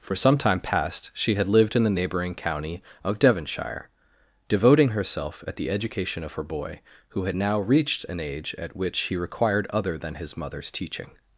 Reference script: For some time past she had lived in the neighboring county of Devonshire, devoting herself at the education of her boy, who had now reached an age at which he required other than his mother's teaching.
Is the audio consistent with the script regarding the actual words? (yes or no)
yes